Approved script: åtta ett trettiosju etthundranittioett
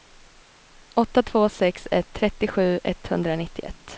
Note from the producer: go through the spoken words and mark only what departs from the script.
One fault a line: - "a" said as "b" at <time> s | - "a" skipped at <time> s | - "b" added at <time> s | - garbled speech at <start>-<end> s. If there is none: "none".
- "två sex" added at 1.2 s